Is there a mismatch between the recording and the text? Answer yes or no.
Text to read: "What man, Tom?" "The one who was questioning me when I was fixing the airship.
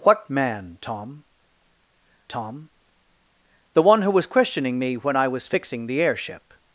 yes